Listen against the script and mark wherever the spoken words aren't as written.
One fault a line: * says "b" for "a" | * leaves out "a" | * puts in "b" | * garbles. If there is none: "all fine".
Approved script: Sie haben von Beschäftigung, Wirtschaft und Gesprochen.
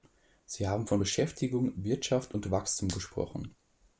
* puts in "Wachstum"